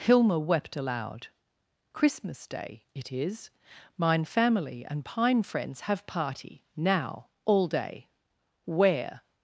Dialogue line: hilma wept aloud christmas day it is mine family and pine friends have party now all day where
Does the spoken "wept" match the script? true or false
true